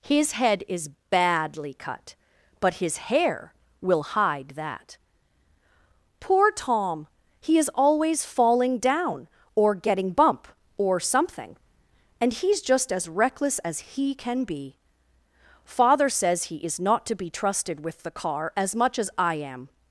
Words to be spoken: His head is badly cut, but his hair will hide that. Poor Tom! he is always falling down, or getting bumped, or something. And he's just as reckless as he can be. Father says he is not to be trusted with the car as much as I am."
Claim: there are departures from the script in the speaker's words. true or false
true